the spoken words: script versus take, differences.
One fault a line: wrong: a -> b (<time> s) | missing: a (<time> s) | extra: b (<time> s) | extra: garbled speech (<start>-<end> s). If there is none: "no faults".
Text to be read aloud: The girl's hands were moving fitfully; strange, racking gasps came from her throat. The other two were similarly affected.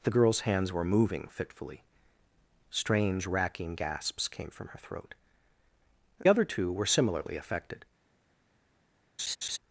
missing: The (5.1 s)